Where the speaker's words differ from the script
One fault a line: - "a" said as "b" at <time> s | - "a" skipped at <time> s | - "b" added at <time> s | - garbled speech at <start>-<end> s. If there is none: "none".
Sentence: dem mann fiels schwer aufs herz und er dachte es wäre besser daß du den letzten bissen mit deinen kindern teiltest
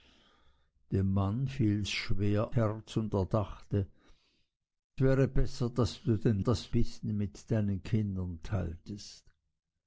- "aufs" skipped at 2.5 s
- "es" skipped at 3.9 s
- "letzten" said as "daß" at 6.4 s